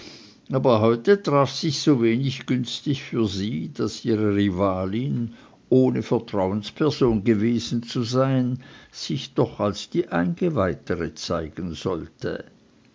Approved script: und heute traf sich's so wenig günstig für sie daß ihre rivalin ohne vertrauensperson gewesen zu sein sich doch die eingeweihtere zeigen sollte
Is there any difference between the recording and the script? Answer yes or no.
yes